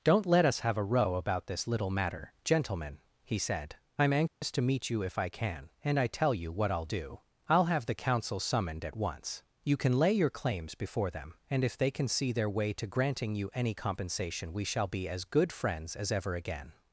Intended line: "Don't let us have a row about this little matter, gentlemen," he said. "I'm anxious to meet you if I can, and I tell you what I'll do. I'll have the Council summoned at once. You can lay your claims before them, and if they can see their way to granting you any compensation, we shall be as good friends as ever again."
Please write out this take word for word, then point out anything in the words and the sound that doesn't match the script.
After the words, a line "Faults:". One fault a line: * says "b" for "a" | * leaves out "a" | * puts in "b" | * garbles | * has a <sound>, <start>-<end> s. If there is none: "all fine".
"Don't let us have a row about this little matter, gentlemen," he said. "I'm anxious to meet you if I can, and I tell you what I'll do. I'll have the Council summoned at once. You can lay your claims before them, and if they can see their way to granting you any compensation, we shall be as good friends as ever again."
Faults:
* has a dropout, 4.3-4.4 s